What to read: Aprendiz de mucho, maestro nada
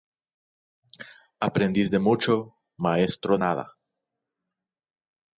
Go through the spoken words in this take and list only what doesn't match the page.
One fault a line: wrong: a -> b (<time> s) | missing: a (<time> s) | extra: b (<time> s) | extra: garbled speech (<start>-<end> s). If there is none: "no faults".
no faults